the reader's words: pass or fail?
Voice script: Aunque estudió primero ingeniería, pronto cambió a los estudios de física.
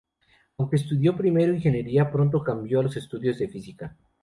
pass